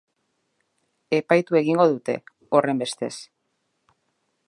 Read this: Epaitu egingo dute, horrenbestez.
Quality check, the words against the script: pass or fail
pass